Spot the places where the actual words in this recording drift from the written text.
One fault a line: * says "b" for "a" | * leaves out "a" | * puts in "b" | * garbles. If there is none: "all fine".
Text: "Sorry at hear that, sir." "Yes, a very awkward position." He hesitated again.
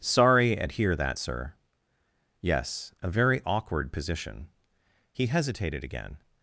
all fine